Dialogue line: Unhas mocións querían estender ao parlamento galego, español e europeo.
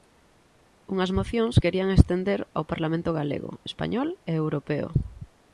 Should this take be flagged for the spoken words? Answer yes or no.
no